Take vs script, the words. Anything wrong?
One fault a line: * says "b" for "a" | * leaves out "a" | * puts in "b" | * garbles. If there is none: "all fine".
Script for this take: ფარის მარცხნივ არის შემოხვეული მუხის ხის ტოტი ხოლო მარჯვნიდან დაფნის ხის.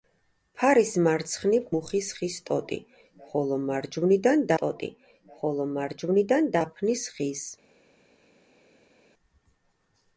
* says "მუხის ხის ტოტი ხოლო მარჯვნიდან" for "არის შემოხვეული მუხის ხის"